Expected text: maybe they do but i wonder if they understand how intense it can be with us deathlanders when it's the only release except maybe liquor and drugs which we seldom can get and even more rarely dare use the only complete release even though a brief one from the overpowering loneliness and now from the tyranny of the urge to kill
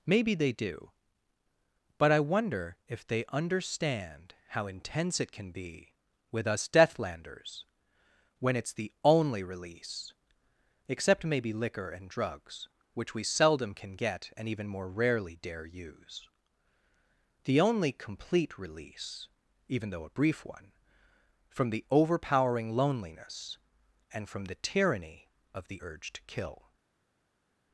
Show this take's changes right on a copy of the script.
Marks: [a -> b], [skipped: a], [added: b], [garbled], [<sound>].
maybe they do but i wonder if they understand how intense it can be with us deathlanders when it's the only release except maybe liquor and drugs which we seldom can get and even more rarely dare use the only complete release even though a brief one from the overpowering loneliness and [skipped: now] from the tyranny of the urge to kill